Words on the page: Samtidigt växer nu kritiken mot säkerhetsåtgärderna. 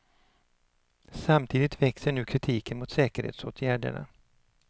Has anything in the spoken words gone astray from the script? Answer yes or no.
no